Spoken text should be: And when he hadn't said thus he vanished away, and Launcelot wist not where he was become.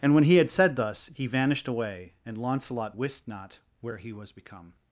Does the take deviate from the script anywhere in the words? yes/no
yes